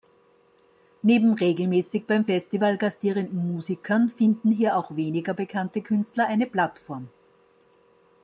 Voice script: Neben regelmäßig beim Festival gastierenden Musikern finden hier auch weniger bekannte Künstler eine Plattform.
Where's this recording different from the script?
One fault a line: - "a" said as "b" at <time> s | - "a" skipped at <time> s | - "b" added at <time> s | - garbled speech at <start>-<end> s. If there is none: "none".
none